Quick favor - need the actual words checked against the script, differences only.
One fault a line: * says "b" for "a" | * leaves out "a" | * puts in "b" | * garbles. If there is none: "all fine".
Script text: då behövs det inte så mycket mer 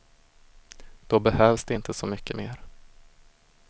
all fine